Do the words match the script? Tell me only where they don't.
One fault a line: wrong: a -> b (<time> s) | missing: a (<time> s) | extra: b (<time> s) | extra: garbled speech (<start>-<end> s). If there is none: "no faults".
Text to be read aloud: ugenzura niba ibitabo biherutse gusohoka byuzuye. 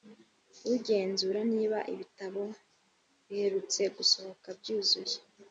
no faults